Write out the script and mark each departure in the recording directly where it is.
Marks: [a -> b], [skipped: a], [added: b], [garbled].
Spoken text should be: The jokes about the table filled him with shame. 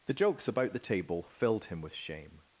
The jokes about the table filled him with shame.